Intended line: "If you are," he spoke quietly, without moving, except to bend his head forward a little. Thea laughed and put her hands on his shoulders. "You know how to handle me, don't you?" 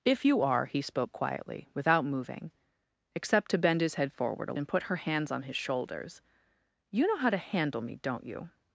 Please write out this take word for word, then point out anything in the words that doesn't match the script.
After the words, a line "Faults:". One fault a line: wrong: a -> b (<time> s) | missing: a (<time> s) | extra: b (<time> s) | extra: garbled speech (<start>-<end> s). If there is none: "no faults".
"If you are," he spoke quietly, without moving, except to bend his head forward a and put her hands on his shoulders. "You know how to handle me, don't you?"
Faults:
missing: little Thea laughed (4.5 s)